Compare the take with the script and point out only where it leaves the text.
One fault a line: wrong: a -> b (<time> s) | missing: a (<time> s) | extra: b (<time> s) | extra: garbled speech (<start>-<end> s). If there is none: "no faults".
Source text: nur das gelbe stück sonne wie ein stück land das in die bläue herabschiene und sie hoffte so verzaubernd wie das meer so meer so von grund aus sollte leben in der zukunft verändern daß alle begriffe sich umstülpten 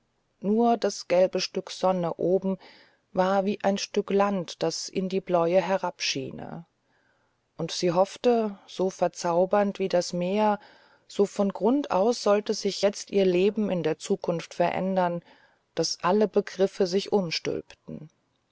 extra: oben war (2.1 s)
missing: meer so (11.3 s)
extra: sich jetzt ihr (12.6 s)